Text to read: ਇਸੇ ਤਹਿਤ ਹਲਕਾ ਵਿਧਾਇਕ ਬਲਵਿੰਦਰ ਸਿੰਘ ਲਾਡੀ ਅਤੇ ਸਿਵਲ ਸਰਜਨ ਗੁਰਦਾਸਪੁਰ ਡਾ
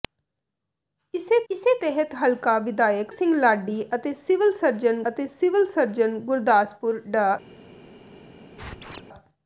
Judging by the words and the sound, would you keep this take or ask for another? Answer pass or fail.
fail